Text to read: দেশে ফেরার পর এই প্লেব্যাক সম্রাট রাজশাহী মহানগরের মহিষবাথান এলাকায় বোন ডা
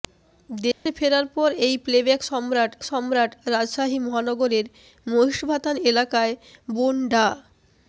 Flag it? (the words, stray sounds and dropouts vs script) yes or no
yes